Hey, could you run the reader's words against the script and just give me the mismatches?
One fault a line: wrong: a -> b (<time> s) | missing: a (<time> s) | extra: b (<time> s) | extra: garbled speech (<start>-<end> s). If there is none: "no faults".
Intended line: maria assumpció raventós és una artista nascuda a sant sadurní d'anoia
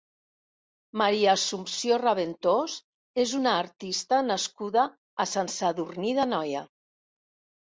no faults